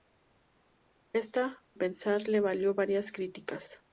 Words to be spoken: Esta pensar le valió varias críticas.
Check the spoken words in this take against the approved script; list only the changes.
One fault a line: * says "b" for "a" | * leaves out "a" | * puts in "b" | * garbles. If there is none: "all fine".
all fine